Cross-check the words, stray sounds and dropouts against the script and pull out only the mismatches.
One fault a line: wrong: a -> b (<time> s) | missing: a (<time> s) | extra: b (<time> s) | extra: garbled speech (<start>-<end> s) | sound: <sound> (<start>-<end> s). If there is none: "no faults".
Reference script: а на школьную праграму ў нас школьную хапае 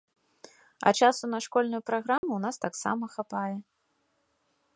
extra: часу (1.0 s)
sound: dropout (2.2-2.2 s)
wrong: школьную -> таксама (2.7 s)